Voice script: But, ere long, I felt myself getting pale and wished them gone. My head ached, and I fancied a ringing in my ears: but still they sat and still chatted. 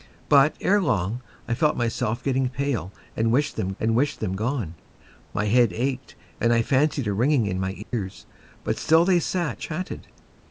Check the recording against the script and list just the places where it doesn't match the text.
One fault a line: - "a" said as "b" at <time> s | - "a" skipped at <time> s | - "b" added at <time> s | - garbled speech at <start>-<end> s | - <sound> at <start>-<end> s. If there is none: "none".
- "and wished them" added at 3.8 s
- dropout at 7.8-7.9 s
- "and still" skipped at 9.6 s